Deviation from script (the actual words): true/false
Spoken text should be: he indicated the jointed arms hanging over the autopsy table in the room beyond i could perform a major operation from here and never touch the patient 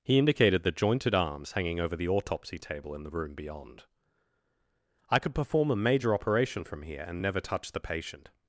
false